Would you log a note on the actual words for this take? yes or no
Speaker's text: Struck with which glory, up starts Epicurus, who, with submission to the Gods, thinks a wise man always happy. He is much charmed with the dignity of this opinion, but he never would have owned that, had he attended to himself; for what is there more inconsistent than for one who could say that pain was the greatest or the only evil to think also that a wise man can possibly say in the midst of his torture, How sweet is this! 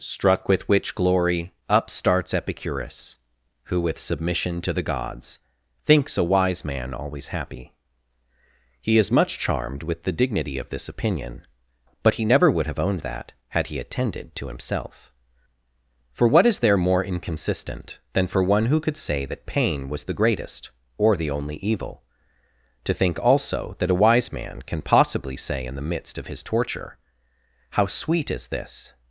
no